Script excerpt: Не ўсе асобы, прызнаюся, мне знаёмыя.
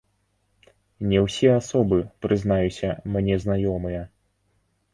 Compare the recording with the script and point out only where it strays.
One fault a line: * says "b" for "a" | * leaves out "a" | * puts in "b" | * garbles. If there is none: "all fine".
all fine